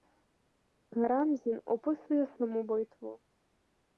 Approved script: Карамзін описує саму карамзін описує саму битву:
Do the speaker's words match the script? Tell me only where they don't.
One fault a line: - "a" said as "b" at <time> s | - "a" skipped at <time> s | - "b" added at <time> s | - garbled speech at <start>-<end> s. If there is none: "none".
- "карамзін описує саму" skipped at 2.6 s